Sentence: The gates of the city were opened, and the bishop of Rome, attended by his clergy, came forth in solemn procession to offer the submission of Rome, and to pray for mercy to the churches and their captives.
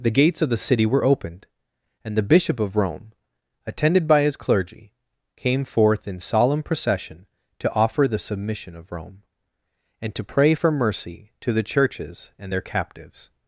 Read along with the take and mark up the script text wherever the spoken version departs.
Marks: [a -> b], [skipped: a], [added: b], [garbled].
The gates of the city were opened, and the bishop of Rome, attended by his clergy, came forth in solemn procession to offer the submission of Rome, and to pray for mercy to the churches and their captives.